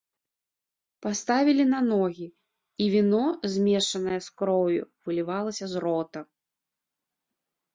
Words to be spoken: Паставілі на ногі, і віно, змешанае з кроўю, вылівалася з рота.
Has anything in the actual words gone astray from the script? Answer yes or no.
no